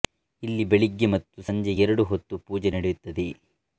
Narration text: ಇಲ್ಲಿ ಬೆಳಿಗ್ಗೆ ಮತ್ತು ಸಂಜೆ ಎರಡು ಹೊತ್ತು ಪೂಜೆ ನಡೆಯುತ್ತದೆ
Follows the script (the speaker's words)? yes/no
yes